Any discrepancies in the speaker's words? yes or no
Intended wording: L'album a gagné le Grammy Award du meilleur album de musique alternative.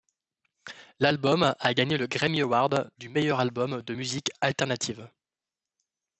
no